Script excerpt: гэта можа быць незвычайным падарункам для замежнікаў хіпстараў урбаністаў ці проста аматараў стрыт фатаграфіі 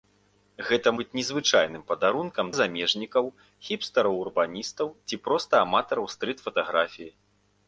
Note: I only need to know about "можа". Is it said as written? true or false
false